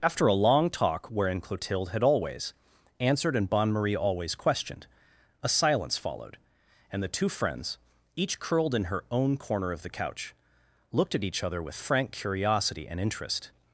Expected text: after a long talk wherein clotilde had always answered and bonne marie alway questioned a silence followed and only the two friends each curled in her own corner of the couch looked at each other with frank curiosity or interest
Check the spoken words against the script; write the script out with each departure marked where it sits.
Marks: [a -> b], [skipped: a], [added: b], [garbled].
after a long talk wherein clotilde had always answered and bonne marie [alway -> always] questioned a silence followed and [skipped: only] the two friends each curled in her own corner of the couch looked at each other with frank curiosity [or -> and] interest